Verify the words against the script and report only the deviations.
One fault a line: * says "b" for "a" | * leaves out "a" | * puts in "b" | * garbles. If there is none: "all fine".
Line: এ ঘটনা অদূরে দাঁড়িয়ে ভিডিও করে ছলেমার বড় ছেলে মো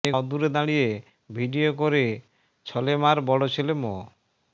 * leaves out "ঘটনা"